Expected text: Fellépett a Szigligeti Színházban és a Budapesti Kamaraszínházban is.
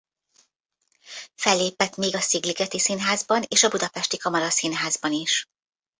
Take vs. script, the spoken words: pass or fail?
fail